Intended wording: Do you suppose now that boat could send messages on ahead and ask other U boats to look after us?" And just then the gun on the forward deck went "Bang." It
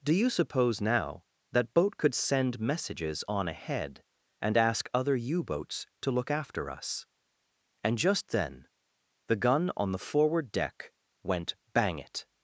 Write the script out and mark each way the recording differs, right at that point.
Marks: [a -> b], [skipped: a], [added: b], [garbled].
Do you suppose now that boat could send messages on ahead and ask other U boats to look after us?" And just then the gun on the forward deck went "Bang." It